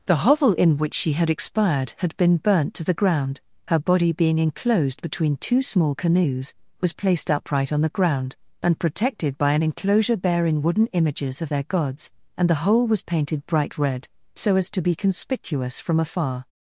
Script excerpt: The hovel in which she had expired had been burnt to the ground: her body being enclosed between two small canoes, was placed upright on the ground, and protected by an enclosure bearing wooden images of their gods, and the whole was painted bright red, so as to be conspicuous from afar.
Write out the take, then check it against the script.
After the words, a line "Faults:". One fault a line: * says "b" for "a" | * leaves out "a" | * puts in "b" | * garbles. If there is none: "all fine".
The hovel in which she had expired had been burnt to the ground: her body being enclosed between two small canoes, was placed upright on the ground, and protected by an enclosure bearing wooden images of their gods, and the whole was painted bright red, so as to be conspicuous from afar.
Faults:
all fine